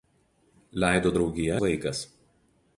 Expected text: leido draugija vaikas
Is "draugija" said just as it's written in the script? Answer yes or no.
yes